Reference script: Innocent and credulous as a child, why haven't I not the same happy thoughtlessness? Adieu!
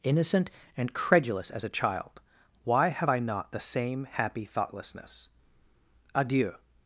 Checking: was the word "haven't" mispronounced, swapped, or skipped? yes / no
yes